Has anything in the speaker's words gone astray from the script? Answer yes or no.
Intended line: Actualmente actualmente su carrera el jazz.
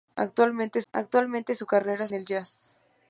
no